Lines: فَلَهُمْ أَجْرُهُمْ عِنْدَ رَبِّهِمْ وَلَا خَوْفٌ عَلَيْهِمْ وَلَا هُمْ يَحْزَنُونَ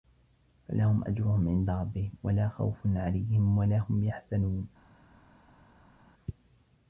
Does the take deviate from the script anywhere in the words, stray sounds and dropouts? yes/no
no